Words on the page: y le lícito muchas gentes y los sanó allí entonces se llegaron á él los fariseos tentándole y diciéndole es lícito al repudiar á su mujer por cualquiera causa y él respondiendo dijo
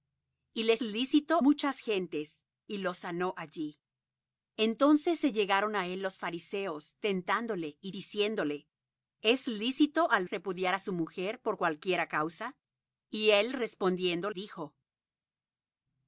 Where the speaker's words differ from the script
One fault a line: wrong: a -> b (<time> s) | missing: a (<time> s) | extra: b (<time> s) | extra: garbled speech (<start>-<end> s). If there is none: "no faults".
no faults